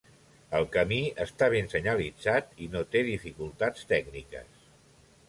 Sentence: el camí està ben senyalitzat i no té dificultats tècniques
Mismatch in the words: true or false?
false